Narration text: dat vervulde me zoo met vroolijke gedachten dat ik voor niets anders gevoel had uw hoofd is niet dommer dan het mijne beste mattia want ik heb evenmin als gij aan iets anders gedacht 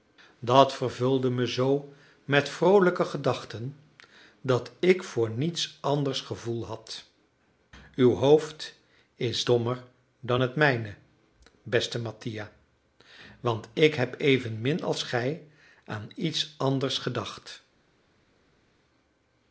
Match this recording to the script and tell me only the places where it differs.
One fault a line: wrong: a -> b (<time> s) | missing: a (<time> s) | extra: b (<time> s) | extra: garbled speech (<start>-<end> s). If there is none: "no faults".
missing: niet (9.5 s)